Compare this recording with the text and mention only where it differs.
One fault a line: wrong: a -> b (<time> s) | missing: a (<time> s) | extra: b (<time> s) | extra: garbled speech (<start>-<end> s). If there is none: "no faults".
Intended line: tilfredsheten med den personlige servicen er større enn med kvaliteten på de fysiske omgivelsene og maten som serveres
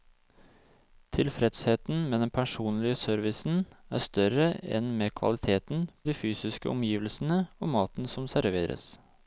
missing: på (5.9 s)